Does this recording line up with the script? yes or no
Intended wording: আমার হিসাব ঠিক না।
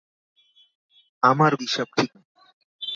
yes